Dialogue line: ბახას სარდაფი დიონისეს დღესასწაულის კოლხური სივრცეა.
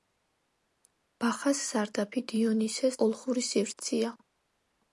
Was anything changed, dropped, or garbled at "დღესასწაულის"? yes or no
yes